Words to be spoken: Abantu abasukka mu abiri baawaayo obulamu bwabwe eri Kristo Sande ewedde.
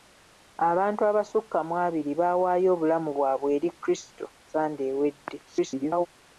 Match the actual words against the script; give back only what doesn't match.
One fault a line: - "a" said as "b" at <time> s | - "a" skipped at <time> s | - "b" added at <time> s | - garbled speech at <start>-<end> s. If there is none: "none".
- garbled speech at 5.4-6.1 s